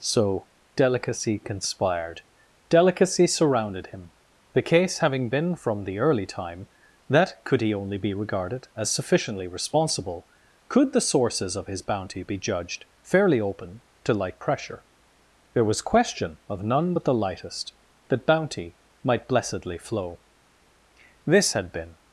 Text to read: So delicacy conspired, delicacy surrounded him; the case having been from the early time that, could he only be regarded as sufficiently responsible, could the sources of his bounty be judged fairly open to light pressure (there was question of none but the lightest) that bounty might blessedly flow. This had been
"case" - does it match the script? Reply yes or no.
yes